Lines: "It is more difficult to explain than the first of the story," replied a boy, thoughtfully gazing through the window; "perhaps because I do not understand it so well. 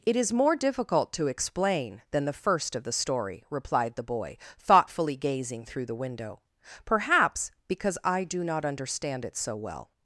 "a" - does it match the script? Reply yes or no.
no